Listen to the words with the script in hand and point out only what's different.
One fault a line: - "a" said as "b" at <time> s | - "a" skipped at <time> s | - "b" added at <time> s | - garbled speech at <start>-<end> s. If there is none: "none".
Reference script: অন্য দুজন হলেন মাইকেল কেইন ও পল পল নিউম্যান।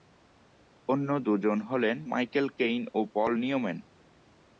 - "পল" skipped at 3.3 s